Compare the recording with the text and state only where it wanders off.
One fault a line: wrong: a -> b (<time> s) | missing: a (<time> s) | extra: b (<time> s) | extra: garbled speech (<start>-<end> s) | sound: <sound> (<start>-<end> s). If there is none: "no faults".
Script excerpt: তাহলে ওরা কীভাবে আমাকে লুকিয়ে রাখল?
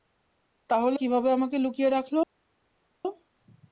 missing: ওরা (1.0 s)